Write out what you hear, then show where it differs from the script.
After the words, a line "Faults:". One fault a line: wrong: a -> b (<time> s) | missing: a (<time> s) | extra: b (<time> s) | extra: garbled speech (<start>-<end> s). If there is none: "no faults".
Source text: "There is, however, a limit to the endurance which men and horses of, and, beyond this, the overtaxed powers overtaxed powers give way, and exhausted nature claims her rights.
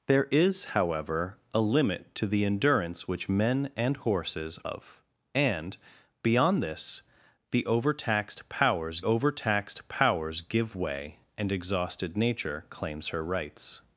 "There is, however, a limit to the endurance which men and horses of, and, beyond this, the overtaxed powers overtaxed powers give way, and exhausted nature claims her rights.
Faults:
no faults